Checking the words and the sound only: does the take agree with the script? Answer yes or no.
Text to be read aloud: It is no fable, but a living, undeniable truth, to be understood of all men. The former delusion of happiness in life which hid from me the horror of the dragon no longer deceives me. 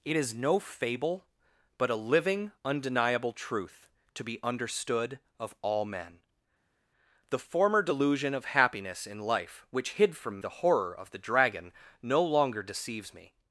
no